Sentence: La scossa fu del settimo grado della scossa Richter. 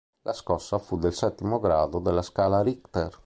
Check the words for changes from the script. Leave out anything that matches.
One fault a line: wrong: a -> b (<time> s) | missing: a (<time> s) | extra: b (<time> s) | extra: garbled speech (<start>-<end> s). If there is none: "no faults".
wrong: scossa -> scala (2.2 s)